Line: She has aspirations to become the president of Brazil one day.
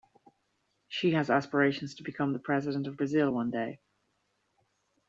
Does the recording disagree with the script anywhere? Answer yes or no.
no